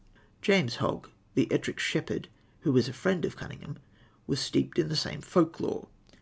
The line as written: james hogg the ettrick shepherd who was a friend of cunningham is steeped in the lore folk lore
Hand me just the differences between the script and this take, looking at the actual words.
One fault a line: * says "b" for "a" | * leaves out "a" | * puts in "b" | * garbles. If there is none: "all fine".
* says "was" for "is"
* says "same" for "lore"